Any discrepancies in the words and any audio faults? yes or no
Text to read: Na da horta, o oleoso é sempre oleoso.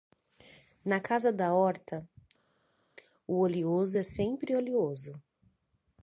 yes